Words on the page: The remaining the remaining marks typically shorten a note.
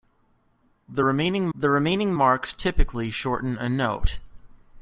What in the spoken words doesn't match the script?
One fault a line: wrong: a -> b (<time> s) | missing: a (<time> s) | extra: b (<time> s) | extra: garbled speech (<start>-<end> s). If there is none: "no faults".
no faults